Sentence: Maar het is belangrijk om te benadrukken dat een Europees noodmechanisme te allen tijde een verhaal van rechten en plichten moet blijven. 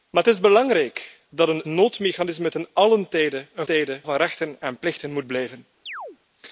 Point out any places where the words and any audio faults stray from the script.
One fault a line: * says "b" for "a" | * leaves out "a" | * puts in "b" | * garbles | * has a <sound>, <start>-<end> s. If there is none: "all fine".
* leaves out "om te benadrukken"
* leaves out "Europees"
* says "tijde" for "verhaal"
* has a chirp, 5.9-6.2 s